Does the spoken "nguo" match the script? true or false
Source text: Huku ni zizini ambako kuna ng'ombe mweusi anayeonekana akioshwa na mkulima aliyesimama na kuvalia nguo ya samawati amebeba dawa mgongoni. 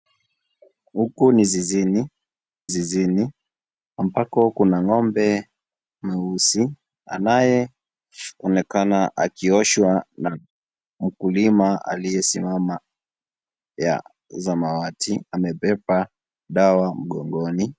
false